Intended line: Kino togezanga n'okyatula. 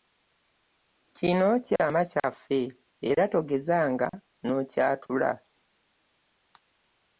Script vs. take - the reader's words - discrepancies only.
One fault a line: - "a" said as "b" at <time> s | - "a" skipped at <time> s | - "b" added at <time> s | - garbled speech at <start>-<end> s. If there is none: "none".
- "kyama kyaffe era" added at 1.6 s